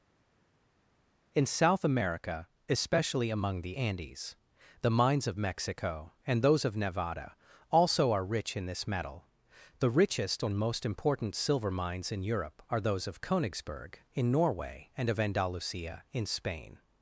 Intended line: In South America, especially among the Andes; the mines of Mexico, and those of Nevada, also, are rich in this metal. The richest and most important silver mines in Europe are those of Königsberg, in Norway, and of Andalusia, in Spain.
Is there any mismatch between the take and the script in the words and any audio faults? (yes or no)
no